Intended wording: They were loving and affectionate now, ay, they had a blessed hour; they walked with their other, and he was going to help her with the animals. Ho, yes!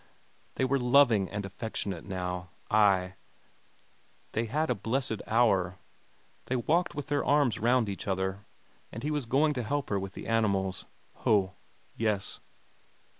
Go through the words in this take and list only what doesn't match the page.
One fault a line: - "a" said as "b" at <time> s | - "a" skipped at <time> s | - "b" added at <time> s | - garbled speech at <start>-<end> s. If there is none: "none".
- "arms round each" added at 7.2 s